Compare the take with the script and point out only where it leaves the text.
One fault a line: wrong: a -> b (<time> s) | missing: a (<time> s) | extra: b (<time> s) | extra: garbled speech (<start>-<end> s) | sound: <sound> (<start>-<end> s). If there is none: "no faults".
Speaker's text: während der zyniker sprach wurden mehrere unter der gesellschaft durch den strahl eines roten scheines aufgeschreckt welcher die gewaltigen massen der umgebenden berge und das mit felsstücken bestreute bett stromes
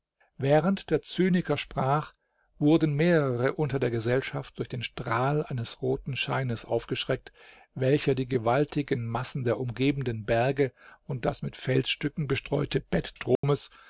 sound: dropout (13.4-13.4 s)